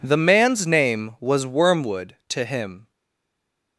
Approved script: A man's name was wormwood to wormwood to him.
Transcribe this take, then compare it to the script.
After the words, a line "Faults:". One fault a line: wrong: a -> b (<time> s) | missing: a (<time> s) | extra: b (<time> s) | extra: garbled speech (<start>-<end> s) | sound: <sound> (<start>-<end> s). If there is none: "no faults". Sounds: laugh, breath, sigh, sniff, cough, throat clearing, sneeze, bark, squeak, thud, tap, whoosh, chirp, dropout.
The man's name was wormwood to him.
Faults:
wrong: A -> The (0.0 s)
missing: wormwood to (2.4 s)